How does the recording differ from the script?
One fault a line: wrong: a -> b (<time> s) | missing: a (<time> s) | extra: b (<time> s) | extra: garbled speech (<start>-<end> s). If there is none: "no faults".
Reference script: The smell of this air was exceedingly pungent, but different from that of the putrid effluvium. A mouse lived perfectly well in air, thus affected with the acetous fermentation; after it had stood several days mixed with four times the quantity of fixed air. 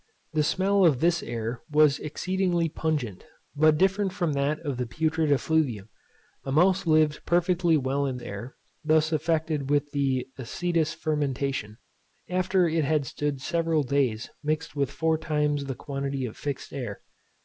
no faults